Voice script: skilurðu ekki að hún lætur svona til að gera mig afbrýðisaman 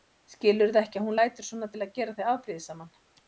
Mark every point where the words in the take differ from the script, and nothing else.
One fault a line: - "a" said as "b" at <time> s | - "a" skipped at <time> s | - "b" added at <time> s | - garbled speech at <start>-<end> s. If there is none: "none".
- "mig" said as "þig" at 2.2 s